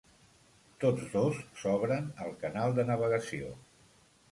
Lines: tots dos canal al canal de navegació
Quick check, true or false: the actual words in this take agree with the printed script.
false